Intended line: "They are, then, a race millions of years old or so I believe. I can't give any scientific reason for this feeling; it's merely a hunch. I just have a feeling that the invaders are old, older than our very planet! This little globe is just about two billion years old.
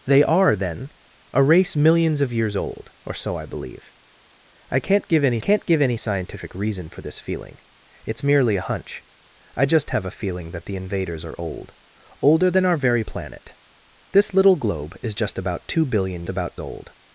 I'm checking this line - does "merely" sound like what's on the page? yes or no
yes